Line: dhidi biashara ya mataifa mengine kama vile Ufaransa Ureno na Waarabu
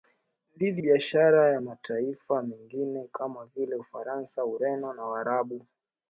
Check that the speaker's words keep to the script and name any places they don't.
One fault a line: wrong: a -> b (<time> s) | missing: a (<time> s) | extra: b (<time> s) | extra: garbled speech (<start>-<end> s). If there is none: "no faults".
no faults